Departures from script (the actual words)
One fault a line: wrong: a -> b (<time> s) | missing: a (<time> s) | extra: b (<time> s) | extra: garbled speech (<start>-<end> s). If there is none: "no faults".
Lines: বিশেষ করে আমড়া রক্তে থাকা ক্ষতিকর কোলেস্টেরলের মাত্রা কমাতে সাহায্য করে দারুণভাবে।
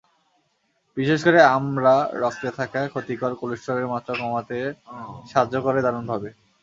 no faults